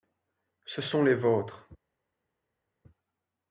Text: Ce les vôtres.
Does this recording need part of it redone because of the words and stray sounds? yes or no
yes